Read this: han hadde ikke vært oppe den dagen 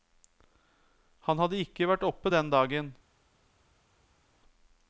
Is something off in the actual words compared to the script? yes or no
no